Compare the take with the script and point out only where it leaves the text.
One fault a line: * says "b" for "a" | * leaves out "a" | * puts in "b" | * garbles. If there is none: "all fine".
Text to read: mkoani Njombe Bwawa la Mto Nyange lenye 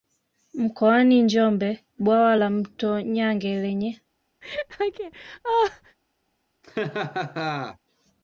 all fine